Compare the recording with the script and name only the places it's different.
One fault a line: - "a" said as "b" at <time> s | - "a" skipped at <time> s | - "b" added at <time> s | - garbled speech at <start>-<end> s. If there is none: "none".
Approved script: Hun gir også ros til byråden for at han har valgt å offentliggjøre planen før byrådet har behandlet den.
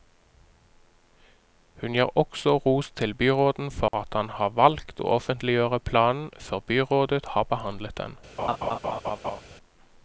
none